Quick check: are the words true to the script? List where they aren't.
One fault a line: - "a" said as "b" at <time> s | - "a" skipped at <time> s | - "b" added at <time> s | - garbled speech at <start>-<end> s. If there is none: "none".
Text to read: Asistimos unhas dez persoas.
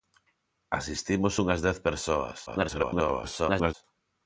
- garbled speech at 2.5-3.7 s